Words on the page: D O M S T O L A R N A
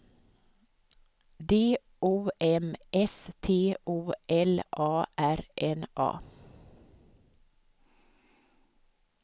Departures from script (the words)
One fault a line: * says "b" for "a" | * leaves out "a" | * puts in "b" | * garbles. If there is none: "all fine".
all fine